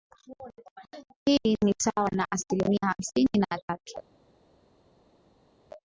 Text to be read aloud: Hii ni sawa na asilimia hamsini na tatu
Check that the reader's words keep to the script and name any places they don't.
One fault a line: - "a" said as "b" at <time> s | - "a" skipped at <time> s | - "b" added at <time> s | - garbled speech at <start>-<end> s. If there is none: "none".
none